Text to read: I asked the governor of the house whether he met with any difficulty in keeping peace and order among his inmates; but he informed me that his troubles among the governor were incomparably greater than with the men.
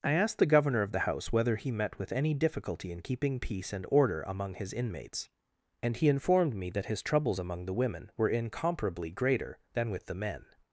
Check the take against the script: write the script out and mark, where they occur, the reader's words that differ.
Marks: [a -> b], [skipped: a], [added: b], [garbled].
I asked the governor of the house whether he met with any difficulty in keeping peace and order among his inmates; [but -> and] he informed me that his troubles among the [governor -> women] were incomparably greater than with the men.